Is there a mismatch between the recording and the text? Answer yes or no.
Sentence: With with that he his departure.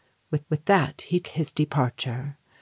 no